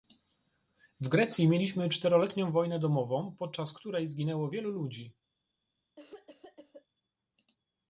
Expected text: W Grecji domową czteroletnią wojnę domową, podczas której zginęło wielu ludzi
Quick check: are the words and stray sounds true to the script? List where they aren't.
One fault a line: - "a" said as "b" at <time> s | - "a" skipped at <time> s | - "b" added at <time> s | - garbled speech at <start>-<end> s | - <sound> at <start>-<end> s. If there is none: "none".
- "domową" said as "mieliśmy" at 1.5 s
- cough at 6.0-6.9 s